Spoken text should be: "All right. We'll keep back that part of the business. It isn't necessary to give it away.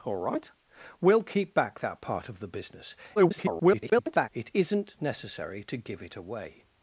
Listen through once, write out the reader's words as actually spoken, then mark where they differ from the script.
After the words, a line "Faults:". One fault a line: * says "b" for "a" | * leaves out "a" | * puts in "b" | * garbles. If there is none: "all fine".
"All right. We'll keep back that part of the business. [garbled] It isn't necessary to give it away.
Faults:
* garbles